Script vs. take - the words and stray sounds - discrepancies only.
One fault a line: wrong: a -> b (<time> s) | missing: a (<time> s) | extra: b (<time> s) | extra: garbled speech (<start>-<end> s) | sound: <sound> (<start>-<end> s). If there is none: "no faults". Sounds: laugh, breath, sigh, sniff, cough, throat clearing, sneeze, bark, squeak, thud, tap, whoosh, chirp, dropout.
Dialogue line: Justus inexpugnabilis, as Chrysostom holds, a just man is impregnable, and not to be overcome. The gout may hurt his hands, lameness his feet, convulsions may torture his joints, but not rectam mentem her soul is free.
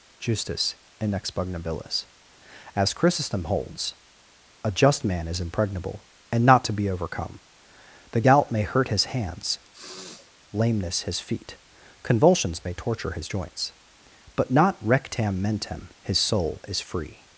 sound: sniff (9.7-10.3 s)
wrong: her -> his (16.0 s)